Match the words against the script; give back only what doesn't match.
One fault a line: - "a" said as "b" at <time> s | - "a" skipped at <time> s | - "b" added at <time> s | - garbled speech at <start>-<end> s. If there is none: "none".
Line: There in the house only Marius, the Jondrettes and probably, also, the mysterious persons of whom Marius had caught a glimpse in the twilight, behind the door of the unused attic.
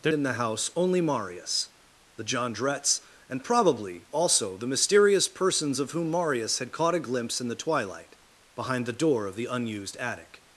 none